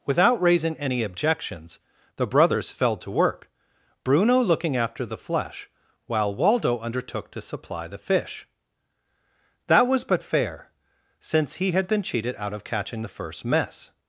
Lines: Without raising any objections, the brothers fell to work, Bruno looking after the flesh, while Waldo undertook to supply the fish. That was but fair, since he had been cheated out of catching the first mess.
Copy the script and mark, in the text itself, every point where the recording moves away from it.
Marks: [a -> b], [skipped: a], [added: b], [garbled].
Without raising any objections, the brothers fell to work, Bruno looking after the flesh, while Waldo undertook to supply the fish. That was but fair, since he had been cheated out of catching the first mess.